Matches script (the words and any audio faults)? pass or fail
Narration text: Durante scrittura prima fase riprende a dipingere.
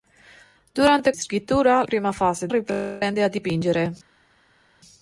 pass